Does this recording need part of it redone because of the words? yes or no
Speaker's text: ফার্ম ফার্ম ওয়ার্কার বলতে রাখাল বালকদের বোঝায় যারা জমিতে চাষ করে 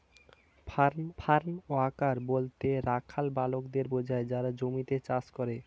no